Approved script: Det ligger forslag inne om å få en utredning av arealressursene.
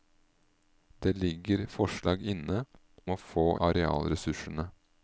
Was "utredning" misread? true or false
true